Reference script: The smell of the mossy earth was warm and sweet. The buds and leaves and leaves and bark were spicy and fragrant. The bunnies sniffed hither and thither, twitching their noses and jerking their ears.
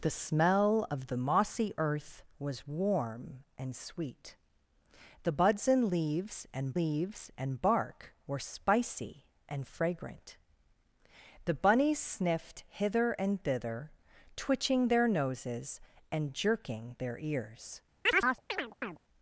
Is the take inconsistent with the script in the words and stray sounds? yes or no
yes